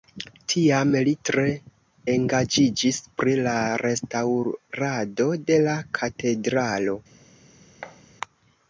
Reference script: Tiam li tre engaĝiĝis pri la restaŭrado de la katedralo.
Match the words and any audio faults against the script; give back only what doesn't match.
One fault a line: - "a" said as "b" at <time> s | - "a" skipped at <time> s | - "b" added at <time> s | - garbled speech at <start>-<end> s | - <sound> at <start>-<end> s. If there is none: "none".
- thud at 7.8-8.0 s